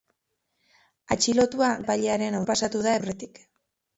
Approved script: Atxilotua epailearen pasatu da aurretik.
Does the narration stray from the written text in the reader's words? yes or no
no